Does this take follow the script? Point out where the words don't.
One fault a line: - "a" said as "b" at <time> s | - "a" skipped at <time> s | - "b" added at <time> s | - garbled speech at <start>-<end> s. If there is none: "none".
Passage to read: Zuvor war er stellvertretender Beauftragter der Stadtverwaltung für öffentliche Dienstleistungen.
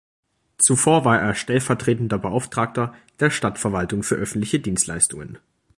none